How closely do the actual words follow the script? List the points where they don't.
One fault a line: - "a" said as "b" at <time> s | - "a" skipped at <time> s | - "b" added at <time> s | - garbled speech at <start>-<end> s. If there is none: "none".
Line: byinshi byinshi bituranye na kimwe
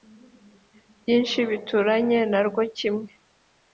- "byinshi" skipped at 1.4 s
- "rwo" added at 2.5 s